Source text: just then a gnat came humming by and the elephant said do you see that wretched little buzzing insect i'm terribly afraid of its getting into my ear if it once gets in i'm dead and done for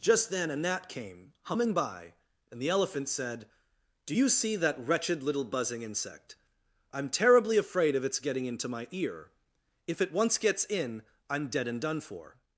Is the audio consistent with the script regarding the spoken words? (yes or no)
yes